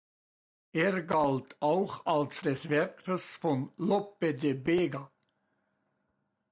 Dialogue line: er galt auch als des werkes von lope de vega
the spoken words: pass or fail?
pass